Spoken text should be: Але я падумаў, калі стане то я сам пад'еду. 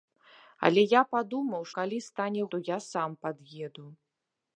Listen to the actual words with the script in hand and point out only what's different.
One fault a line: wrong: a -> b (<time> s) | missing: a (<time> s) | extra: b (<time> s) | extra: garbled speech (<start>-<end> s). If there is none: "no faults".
no faults